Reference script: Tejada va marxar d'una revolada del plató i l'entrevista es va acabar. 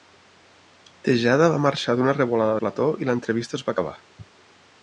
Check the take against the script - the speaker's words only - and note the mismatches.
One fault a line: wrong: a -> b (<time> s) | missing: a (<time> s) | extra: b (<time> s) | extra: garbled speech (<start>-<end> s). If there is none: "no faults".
missing: del (2.6 s)